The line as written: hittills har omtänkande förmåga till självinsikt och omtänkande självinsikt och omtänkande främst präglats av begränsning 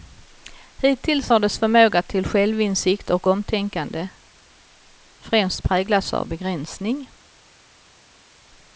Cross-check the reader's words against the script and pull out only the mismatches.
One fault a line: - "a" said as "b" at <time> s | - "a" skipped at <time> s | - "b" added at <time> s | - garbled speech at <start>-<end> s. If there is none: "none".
- "omtänkande" said as "dess" at 1.4 s
- "självinsikt och omtänkande" skipped at 4.1 s